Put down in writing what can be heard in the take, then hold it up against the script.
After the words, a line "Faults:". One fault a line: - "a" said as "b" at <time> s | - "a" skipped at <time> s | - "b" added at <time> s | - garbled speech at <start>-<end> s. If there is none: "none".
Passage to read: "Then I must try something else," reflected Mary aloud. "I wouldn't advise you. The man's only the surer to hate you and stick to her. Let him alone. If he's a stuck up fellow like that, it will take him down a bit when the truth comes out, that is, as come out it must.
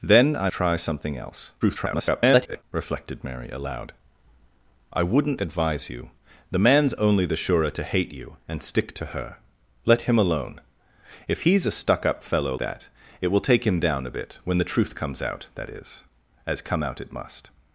"Then I try something else," [garbled] reflected Mary aloud. "I wouldn't advise you. The man's only the surer to hate you and stick to her. Let him alone. If he's a stuck up fellow that, it will take him down a bit when the truth comes out, that is, as come out it must.
Faults:
- "must" skipped at 0.5 s
- garbled speech at 1.6-2.6 s
- "like" skipped at 12.5 s